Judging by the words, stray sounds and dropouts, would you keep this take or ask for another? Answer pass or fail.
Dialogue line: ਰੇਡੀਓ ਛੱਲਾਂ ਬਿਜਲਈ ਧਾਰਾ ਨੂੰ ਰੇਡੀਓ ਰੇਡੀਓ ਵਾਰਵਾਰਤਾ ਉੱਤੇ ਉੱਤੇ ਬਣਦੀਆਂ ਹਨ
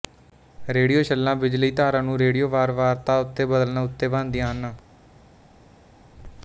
fail